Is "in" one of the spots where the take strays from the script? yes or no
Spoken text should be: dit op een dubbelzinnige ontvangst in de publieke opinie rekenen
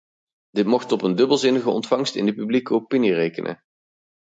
no